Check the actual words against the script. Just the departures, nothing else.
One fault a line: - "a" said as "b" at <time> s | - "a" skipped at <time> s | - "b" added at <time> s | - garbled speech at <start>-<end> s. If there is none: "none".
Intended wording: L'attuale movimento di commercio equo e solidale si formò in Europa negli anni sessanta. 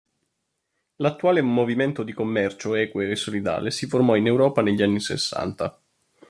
none